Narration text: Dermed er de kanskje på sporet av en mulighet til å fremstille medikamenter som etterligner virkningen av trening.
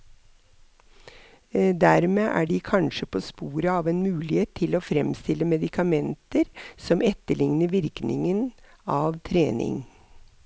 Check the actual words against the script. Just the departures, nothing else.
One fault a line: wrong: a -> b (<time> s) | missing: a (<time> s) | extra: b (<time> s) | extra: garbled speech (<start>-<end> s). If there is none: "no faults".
no faults